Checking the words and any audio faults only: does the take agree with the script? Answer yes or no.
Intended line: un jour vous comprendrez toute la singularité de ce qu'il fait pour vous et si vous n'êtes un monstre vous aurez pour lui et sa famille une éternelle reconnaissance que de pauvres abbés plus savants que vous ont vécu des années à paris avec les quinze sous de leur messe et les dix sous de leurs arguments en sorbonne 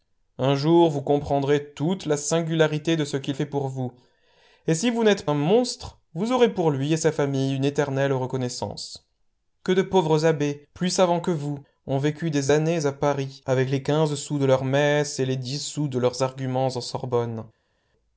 yes